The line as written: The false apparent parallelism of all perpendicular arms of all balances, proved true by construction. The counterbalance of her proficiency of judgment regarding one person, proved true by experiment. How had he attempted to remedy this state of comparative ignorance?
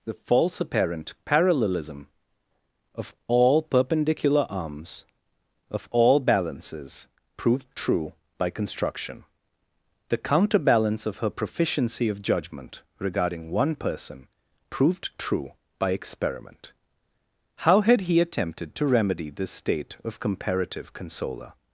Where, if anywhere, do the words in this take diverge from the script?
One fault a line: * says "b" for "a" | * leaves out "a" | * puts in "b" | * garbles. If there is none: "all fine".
* says "consoler" for "ignorance"